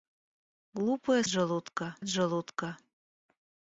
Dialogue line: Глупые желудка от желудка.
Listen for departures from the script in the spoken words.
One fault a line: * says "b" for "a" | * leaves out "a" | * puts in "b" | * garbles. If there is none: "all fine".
all fine